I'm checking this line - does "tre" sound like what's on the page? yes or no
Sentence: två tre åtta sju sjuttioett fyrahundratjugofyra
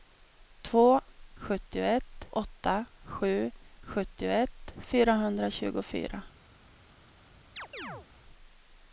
no